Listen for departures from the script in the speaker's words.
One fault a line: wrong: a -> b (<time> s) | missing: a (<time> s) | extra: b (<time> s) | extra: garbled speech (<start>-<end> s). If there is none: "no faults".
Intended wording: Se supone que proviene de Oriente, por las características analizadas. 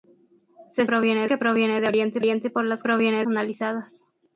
wrong: supone -> proviene (0.8 s)
extra: Oriente (2.2 s)
wrong: características -> proviene (2.8 s)